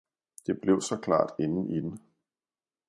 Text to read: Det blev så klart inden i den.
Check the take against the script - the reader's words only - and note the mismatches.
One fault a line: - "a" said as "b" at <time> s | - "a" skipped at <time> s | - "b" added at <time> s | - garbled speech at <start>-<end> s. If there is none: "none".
none